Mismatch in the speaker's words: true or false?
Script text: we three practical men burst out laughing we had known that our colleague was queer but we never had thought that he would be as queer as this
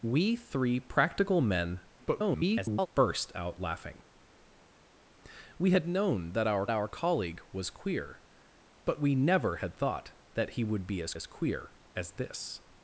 true